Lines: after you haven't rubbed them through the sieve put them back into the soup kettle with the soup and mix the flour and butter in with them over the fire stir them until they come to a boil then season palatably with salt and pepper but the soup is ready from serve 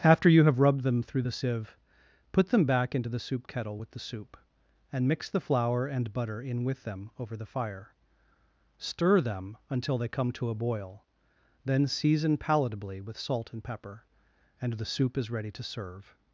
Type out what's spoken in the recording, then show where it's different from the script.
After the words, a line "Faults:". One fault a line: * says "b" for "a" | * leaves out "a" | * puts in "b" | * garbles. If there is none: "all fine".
after you have rubbed them through the sieve put them back into the soup kettle with the soup and mix the flour and butter in with them over the fire stir them until they come to a boil then season palatably with salt and pepper and the soup is ready to serve
Faults:
* says "have" for "haven't"
* says "and" for "but"
* says "to" for "from"